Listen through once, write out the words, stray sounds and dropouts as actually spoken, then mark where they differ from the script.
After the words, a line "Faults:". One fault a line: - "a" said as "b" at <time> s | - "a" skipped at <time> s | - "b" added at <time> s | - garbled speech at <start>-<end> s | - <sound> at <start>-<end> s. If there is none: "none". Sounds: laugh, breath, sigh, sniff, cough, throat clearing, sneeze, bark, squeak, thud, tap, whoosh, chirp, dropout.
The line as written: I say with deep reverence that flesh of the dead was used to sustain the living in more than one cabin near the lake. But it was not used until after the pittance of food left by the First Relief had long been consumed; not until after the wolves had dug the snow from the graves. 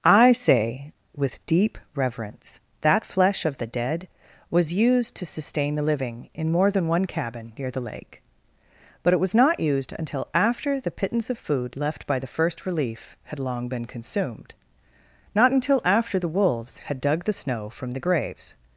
I say with deep reverence that flesh of the dead was used to sustain the living in more than one cabin near the lake. But it was not used until after the pittance of food left by the First Relief had long been consumed; not until after the wolves had dug the snow from the graves.
Faults:
none